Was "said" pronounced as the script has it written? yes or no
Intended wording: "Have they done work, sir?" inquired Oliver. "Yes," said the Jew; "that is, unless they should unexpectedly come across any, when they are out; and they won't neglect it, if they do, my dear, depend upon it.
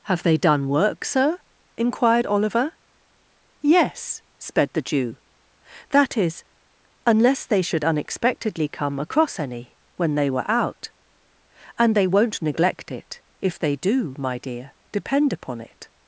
no